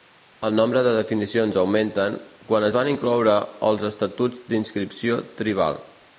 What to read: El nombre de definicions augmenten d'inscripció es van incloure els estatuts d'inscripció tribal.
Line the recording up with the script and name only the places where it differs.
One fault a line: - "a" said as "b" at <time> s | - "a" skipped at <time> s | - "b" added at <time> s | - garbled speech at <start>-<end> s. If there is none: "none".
- "d'inscripció" said as "quan" at 2.5 s